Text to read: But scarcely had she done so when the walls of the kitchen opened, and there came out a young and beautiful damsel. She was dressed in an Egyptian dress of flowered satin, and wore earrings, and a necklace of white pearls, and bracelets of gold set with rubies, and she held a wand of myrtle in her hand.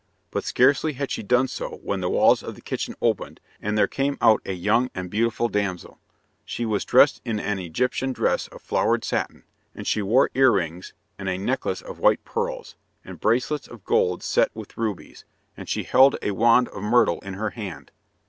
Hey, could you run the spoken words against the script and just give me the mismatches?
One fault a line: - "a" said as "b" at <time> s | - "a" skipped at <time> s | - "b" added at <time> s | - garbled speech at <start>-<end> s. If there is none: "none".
- "she" added at 9.9 s